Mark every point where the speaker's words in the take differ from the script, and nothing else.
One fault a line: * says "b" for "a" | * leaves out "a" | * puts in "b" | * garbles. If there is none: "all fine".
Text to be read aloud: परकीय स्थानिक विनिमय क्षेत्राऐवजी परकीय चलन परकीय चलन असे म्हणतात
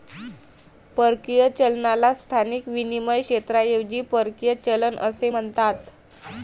* puts in "चलनाला"
* leaves out "परकीय चलन"